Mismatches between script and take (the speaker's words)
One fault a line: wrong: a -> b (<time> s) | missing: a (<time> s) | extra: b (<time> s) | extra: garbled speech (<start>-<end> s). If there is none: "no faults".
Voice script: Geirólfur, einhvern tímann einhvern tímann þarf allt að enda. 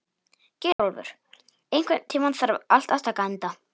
missing: einhvern tímann (2.4 s)
extra: taka (3.1 s)